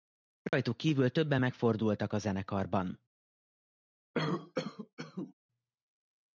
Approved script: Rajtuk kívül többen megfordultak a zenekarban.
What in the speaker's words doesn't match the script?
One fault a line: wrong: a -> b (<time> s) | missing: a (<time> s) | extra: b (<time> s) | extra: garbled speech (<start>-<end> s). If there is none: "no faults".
no faults